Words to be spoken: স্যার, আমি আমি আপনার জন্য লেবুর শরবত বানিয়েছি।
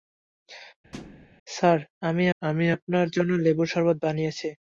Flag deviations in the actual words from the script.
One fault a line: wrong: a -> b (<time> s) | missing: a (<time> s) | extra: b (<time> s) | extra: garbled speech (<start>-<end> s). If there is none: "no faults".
no faults